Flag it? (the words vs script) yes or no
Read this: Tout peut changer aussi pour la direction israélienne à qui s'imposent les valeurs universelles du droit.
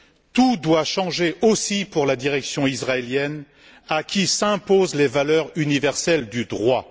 yes